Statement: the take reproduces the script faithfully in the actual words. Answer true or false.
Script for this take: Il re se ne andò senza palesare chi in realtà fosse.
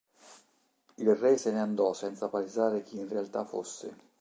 true